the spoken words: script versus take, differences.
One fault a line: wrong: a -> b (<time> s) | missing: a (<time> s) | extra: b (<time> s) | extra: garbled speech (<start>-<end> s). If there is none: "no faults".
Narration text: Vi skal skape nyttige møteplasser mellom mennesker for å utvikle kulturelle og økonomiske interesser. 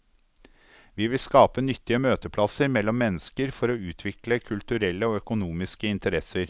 wrong: skal -> vil (1.1 s)